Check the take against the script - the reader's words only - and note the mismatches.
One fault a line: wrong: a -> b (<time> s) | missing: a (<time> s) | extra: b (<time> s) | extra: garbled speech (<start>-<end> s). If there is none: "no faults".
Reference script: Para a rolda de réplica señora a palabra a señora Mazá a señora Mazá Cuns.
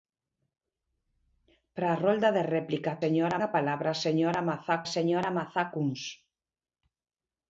no faults